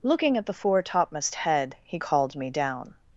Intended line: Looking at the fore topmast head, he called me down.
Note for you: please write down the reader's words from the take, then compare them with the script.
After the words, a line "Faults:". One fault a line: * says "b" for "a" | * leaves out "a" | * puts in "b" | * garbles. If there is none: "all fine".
Looking at the fore topmast head, he called me down.
Faults:
all fine